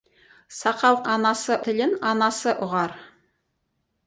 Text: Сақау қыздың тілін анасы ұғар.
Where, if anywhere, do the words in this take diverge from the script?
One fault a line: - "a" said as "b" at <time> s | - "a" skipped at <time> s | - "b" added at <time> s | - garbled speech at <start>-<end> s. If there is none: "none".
- "қыздың" said as "анасы" at 1.1 s